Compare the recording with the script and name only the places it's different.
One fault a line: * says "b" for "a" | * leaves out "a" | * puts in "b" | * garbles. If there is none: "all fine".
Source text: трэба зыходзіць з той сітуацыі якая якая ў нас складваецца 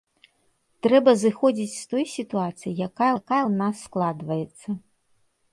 all fine